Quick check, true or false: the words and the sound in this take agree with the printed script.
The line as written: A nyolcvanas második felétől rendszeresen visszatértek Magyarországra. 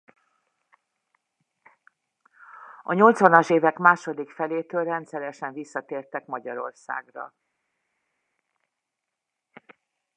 false